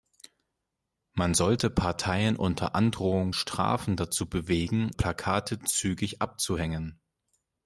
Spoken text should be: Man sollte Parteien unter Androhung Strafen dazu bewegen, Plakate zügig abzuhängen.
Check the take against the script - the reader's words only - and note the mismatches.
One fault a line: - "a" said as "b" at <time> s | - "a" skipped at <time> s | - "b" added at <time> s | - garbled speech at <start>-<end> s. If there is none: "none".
none